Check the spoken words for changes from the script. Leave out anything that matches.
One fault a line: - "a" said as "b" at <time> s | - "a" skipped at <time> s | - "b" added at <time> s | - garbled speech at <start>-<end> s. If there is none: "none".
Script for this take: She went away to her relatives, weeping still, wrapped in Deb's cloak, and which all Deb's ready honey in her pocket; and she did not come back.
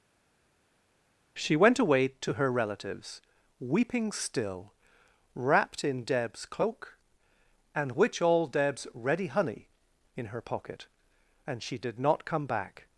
none